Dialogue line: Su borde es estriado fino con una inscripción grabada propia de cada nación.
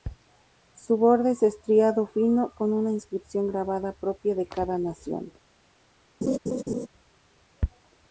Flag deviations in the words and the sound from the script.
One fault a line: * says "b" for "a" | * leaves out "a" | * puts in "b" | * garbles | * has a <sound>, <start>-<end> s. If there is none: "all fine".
* has a laugh, 6.2-6.9 s